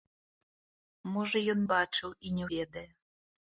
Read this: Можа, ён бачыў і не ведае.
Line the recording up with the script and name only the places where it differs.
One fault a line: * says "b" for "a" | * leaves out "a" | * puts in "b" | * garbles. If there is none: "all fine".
all fine